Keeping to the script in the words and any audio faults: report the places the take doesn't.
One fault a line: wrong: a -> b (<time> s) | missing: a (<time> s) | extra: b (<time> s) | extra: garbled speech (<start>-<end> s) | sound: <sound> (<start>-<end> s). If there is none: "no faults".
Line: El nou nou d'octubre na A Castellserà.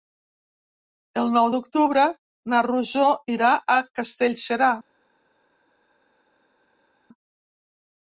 missing: nou (1.5 s)
extra: Rosó irà (2.7 s)